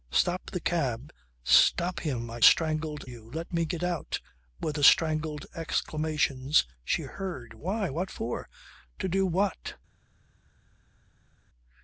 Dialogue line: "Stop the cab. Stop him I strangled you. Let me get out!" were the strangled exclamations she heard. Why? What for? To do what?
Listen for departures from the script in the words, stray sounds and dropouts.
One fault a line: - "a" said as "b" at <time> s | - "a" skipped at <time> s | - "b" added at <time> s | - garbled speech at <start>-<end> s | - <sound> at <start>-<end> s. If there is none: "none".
none